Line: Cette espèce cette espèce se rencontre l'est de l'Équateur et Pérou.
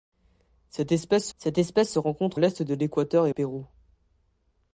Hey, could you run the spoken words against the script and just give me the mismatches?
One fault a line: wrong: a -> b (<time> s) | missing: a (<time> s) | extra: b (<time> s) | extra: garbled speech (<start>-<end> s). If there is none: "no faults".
no faults